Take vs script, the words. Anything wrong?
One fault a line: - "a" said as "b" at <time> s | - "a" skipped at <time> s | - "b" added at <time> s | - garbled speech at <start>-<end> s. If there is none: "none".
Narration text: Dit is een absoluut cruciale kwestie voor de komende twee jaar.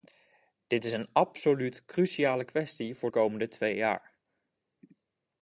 - "de" skipped at 3.1 s